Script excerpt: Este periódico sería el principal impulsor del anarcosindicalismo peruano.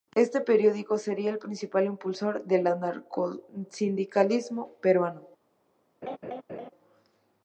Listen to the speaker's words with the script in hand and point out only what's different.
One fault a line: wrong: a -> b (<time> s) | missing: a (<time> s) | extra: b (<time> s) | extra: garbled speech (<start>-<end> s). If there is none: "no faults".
no faults